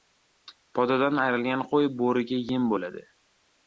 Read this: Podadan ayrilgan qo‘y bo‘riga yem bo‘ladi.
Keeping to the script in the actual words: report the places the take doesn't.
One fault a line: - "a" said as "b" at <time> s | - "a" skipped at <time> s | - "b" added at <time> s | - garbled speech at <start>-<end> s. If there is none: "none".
none